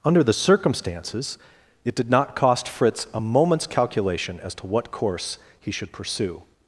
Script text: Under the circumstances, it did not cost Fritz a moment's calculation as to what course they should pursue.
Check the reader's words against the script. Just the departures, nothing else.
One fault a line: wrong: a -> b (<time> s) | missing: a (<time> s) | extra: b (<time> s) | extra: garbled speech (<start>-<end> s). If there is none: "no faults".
wrong: they -> he (5.6 s)